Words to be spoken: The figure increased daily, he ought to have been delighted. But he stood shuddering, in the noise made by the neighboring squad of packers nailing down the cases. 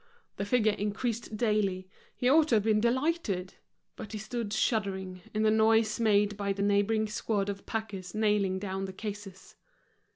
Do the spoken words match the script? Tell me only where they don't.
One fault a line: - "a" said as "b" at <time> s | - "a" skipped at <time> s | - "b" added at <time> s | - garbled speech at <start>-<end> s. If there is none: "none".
none